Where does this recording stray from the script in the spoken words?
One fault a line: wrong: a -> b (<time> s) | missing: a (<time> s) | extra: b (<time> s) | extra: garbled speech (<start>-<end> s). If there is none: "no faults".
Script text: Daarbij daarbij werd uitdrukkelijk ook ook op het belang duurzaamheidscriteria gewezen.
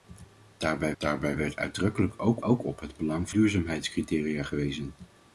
no faults